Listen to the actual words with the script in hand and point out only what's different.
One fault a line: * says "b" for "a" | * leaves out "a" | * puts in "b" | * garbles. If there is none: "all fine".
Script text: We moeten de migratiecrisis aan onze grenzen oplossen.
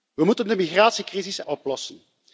* leaves out "aan onze grenzen"